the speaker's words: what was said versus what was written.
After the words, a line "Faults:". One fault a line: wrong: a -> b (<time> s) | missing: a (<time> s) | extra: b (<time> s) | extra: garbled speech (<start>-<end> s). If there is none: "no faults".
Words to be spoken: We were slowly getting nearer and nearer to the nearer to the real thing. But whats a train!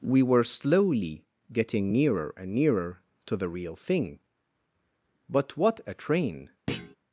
We were slowly getting nearer and nearer to the real thing. But what a train!
Faults:
missing: nearer to the (3.5 s)
wrong: whats -> what (5.6 s)